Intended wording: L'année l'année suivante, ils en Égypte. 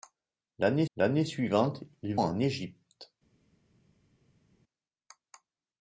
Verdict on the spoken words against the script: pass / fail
pass